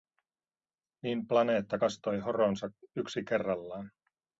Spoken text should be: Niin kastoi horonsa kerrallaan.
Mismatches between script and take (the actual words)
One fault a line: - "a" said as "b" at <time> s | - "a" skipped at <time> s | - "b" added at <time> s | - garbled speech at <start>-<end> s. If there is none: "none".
- "planeetta" added at 1.3 s
- "yksi" added at 3.0 s